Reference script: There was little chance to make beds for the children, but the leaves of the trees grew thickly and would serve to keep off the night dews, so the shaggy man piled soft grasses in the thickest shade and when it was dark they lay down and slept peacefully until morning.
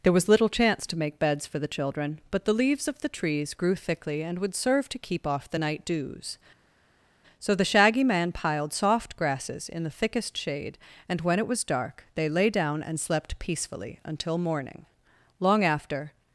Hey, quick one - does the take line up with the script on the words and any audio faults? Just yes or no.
no